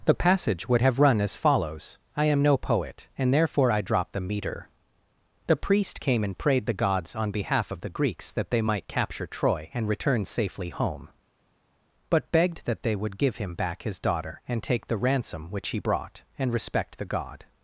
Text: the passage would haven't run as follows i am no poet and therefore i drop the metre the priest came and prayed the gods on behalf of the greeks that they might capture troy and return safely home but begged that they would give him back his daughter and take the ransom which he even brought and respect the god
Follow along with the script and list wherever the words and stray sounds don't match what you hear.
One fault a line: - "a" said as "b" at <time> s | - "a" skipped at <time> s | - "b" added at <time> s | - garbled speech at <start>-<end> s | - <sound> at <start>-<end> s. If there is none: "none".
- "haven't" said as "have" at 0.8 s
- "even" skipped at 15.8 s